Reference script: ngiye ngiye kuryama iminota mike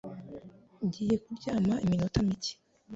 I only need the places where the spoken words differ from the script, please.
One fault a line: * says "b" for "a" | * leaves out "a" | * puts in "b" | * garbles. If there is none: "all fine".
* leaves out "ngiye"